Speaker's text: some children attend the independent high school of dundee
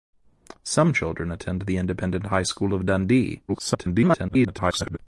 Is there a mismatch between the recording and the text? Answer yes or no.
yes